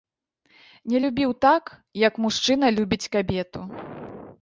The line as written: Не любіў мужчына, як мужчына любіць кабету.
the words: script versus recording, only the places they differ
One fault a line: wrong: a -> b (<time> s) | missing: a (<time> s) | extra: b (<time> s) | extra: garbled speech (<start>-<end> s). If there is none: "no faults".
wrong: мужчына -> так (1.5 s)